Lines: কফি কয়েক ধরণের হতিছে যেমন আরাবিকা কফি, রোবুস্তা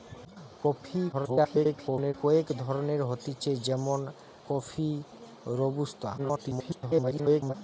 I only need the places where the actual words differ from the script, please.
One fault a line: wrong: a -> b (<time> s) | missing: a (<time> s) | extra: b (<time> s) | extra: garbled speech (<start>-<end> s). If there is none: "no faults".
extra: garbled speech (1.1-2.1 s)
missing: আরাবিকা (4.0 s)
extra: garbled speech (6.2-7.5 s)